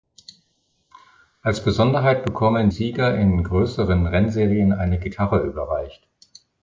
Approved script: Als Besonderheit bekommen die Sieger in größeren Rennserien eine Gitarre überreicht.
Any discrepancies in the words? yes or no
yes